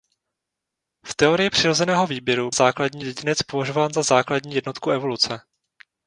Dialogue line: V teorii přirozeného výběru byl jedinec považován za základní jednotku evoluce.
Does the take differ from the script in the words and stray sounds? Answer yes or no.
yes